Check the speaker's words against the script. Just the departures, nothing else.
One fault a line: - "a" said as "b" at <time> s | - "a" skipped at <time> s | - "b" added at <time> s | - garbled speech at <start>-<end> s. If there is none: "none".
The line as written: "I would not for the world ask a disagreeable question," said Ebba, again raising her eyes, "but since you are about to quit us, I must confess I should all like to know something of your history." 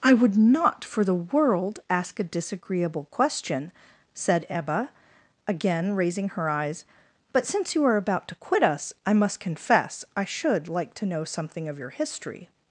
- "all" skipped at 10.7 s